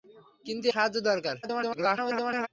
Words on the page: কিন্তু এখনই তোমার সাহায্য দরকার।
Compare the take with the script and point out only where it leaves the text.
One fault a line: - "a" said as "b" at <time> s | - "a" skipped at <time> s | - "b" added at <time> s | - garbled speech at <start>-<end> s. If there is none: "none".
- "এখনই তোমার" skipped at 0.7 s
- garbled speech at 1.4-2.5 s